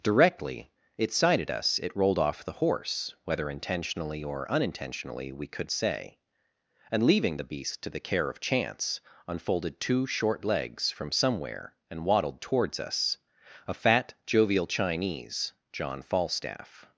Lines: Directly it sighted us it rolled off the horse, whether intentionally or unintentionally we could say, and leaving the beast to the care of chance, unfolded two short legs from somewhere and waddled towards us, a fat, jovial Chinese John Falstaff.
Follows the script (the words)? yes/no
yes